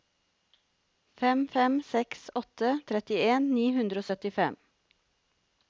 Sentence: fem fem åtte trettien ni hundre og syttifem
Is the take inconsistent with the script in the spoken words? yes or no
yes